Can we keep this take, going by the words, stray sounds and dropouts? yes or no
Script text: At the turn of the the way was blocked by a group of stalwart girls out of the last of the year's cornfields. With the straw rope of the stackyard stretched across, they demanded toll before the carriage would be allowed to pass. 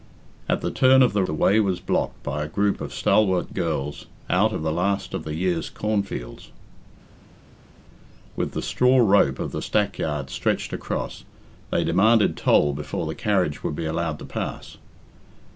yes